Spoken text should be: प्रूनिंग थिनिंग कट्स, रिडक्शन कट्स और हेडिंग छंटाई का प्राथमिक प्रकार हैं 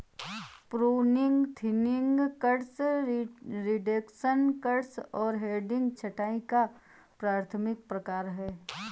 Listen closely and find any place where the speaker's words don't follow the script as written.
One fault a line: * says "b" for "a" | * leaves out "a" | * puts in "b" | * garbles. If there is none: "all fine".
all fine